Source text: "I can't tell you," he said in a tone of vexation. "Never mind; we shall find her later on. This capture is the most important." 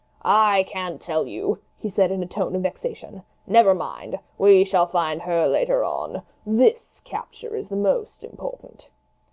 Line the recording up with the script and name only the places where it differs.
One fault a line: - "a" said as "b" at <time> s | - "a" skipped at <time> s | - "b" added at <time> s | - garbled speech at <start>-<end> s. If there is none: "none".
none